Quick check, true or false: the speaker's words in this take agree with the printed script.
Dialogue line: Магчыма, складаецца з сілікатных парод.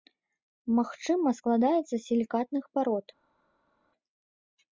true